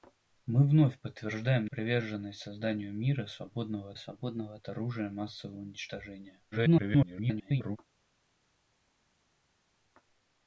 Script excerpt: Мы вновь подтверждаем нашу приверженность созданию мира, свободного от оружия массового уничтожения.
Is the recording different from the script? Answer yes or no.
yes